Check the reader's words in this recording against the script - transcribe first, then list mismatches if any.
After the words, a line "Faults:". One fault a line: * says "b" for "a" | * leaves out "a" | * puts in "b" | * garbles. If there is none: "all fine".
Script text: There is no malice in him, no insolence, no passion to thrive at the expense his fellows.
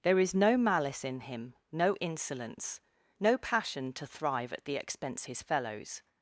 There is no malice in him, no insolence, no passion to thrive at the expense his fellows.
Faults:
all fine